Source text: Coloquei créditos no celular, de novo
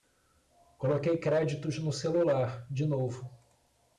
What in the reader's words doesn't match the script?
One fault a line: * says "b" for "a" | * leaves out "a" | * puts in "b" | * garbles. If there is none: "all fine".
all fine